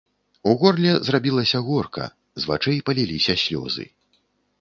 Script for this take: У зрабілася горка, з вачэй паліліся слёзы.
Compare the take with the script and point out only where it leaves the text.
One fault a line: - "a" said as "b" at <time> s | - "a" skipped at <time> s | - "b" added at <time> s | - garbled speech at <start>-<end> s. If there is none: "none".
- "горле" added at 0.6 s